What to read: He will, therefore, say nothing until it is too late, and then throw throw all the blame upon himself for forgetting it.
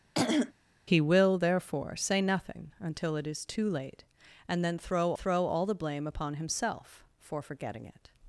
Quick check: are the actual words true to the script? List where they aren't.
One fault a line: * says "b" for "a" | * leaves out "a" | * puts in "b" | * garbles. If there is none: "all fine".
all fine